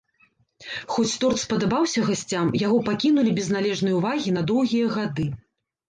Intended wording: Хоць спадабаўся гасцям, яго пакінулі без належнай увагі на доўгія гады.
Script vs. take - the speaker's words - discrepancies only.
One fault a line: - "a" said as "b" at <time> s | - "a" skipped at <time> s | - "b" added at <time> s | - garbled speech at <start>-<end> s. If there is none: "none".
- "торт" added at 1.2 s